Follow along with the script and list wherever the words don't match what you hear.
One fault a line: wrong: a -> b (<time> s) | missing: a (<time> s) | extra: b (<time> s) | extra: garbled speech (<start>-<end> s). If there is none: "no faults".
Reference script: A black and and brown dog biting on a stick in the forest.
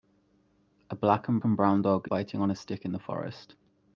no faults